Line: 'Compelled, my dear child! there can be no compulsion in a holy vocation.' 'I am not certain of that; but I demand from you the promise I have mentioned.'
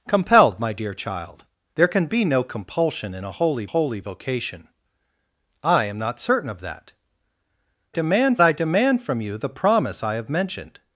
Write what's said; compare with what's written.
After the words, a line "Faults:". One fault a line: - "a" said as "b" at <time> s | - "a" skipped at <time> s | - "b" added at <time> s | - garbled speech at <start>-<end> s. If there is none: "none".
'Compelled, my dear child! there can be no compulsion in a holy holy vocation.' 'I am not certain of that; demand I demand from you the promise I have mentioned.'
Faults:
- "holy" added at 3.6 s
- "but" said as "demand" at 7.9 s